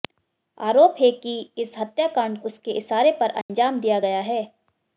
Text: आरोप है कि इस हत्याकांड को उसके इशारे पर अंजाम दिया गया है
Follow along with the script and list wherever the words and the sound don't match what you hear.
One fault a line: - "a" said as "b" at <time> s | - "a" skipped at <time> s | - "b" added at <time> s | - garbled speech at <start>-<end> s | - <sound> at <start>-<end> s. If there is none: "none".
- "को" skipped at 2.4 s
- dropout at 3.4-3.5 s